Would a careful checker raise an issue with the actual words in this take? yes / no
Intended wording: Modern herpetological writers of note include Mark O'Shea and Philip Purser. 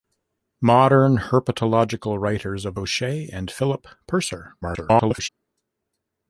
yes